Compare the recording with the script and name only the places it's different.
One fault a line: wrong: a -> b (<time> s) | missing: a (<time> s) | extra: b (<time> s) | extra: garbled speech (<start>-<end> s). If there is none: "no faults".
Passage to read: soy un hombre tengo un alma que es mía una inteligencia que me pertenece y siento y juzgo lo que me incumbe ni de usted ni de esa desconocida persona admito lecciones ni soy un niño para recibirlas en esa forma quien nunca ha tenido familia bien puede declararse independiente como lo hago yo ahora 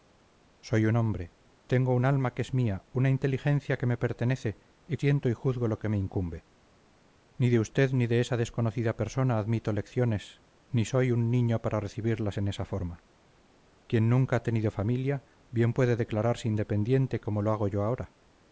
no faults